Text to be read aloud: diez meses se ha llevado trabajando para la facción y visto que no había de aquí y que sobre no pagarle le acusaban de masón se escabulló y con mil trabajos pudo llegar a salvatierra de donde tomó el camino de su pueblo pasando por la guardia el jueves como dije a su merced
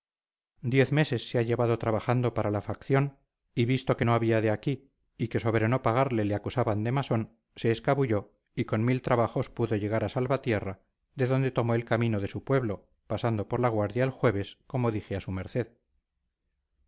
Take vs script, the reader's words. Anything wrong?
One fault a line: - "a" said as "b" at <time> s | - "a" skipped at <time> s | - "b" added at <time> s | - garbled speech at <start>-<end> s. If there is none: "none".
none